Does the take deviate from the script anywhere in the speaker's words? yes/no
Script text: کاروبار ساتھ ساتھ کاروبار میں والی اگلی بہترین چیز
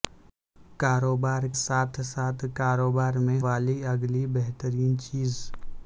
no